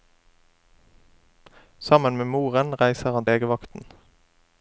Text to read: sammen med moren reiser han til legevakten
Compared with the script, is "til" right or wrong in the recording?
wrong